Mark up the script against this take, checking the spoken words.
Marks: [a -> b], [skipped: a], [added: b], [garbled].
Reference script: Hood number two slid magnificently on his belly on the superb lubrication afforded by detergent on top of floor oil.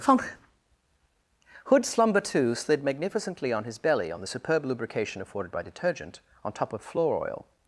Hood [number -> slumber] two slid magnificently on his belly on the superb lubrication afforded by detergent on top of floor oil.